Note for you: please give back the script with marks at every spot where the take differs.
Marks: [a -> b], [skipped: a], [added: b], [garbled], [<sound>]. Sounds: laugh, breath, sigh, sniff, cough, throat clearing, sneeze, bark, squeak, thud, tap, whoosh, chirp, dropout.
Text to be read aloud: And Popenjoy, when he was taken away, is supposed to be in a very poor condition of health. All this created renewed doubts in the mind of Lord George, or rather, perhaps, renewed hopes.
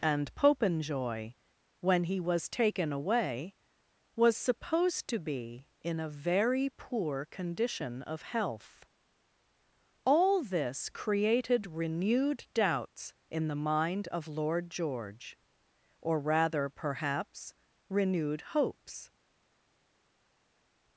And Popenjoy, when he was taken away, [is -> was] supposed to be in a very poor condition of health. All this created renewed doubts in the mind of Lord George, or rather, perhaps, renewed hopes.